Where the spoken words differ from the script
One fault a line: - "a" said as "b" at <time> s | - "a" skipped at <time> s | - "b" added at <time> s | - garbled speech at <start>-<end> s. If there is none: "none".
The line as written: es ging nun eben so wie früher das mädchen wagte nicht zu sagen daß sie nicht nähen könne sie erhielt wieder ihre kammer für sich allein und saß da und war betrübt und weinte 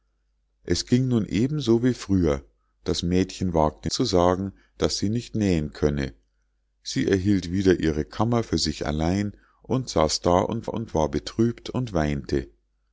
- "nicht" skipped at 3.9 s
- "und" added at 10.6 s